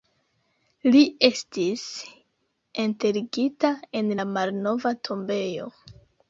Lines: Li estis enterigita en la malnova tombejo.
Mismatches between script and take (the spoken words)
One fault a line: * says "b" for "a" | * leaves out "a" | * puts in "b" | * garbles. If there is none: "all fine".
all fine